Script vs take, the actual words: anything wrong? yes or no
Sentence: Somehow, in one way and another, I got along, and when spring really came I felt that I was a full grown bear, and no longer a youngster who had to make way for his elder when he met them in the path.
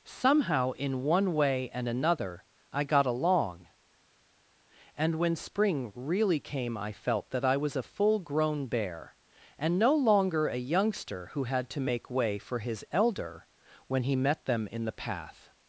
no